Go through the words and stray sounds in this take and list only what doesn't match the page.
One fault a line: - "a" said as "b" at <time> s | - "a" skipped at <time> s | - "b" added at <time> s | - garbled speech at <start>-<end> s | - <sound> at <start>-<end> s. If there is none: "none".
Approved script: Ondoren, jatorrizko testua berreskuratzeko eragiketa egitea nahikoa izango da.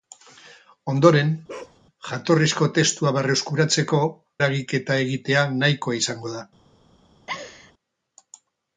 - bark at 1.5-1.8 s
- laugh at 7.3-7.7 s